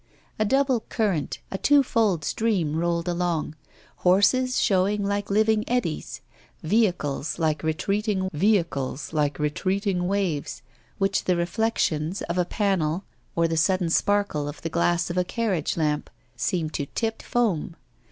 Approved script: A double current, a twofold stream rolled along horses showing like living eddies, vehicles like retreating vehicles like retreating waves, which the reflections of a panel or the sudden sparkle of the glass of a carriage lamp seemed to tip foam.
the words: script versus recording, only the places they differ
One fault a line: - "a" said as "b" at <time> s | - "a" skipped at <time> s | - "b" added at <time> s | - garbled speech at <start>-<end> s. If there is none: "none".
none